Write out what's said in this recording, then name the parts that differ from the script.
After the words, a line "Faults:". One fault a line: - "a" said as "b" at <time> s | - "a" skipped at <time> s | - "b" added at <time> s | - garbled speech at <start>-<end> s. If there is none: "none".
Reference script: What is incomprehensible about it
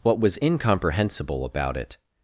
What was incomprehensible about it
Faults:
- "is" said as "was" at 0.2 s